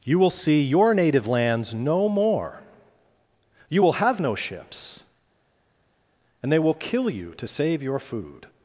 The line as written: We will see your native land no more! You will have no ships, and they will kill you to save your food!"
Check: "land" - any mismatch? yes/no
yes